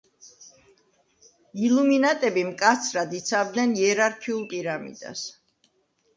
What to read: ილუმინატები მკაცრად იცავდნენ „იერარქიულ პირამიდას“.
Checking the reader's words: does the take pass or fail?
pass